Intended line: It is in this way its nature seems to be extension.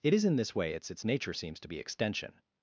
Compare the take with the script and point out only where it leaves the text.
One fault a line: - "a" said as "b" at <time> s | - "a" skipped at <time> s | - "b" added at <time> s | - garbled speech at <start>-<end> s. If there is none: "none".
- "its" added at 0.9 s